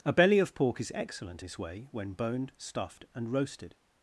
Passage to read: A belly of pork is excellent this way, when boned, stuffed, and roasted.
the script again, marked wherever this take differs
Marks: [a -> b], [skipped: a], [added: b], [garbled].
A belly of pork is excellent this way, when boned, stuffed, and roasted.